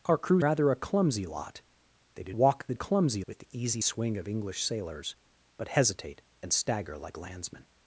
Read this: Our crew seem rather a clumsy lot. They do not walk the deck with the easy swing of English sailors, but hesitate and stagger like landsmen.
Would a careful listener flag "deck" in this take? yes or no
yes